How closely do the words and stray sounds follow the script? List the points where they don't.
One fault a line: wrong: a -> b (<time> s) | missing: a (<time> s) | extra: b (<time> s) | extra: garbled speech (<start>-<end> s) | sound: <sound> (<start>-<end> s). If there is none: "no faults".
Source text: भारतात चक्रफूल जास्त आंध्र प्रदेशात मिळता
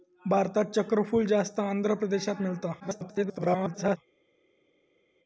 extra: garbled speech (2.8-4.0 s)